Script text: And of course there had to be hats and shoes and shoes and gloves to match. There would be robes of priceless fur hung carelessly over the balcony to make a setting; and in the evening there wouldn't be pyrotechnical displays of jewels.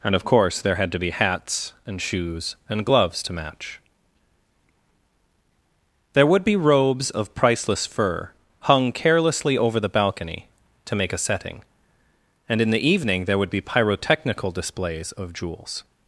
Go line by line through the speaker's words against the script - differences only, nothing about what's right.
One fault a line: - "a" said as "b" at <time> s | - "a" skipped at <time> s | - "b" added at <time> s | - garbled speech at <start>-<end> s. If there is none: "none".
- "shoes and" skipped at 2.9 s
- "wouldn't" said as "would" at 13.4 s